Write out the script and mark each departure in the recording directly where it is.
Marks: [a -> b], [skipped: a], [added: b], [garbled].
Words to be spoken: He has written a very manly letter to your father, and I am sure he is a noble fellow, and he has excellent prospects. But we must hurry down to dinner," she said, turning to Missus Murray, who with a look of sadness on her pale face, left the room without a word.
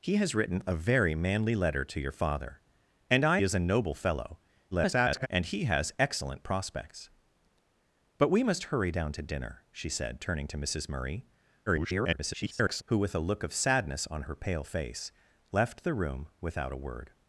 He has written a very manly letter to your father, and I [skipped: am sure he] is a noble fellow, [garbled] and he has excellent prospects. But we must hurry down to dinner," she said, turning to Missus Murray, [garbled] who with a look of sadness on her pale face, left the room without a word.